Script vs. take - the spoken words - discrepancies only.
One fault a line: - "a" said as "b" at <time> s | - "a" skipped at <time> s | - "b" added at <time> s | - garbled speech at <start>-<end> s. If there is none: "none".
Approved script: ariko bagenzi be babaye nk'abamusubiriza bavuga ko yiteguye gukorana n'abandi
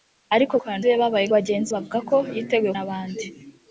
- "bagenzi" said as "gukorana" at 0.6 s
- "nk'abamusubiriza" said as "bagenzi" at 1.3 s
- "gukorana" skipped at 2.7 s